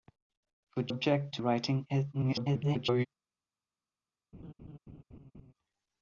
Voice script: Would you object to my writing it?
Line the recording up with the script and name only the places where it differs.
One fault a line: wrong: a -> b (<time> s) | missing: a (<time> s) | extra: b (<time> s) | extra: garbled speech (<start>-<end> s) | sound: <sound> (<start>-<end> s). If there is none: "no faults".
missing: you (0.9 s)
missing: my (1.4 s)
extra: garbled speech (2.1-3.1 s)
sound: laugh (4.3-5.5 s)